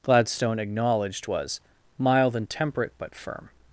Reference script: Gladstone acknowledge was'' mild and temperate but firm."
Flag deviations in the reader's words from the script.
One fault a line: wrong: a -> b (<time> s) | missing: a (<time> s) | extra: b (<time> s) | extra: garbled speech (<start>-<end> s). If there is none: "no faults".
wrong: acknowledge -> acknowledged (0.6 s)